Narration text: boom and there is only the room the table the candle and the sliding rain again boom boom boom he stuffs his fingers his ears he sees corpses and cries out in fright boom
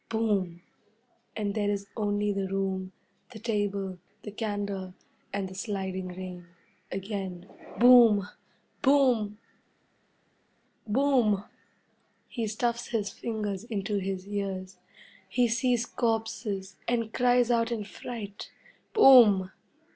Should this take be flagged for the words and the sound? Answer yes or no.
yes